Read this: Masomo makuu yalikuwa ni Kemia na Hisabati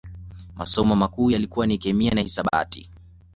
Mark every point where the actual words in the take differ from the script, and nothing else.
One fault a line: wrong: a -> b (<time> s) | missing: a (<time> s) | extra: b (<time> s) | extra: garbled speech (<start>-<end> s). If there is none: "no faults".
no faults